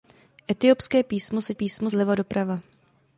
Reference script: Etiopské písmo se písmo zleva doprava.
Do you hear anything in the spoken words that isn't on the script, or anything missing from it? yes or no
no